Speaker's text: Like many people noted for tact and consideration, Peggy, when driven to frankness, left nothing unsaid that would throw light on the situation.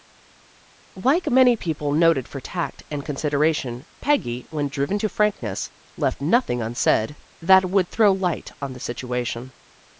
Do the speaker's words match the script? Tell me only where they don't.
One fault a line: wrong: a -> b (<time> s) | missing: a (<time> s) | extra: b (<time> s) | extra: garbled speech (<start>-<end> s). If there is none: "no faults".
no faults